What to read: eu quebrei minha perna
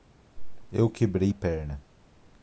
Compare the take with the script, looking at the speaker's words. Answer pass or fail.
fail